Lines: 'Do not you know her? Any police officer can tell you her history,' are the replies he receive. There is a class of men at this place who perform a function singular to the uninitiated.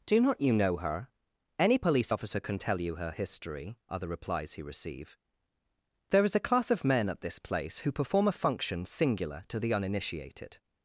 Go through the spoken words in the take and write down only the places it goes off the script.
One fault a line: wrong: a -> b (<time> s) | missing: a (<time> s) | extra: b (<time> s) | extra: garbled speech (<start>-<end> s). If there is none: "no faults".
no faults